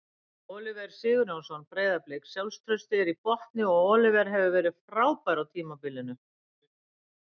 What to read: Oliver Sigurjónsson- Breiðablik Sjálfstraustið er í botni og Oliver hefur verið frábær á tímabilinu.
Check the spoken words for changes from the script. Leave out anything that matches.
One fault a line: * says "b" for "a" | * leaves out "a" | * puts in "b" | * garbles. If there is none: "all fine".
all fine